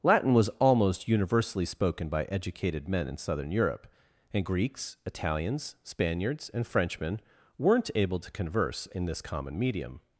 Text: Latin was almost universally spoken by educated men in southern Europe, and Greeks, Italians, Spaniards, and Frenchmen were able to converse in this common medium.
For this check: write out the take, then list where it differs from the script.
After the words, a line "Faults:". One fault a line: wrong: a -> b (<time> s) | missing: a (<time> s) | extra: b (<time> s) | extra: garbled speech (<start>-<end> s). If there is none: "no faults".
Latin was almost universally spoken by educated men in southern Europe, and Greeks, Italians, Spaniards, and Frenchmen weren't able to converse in this common medium.
Faults:
wrong: were -> weren't (7.6 s)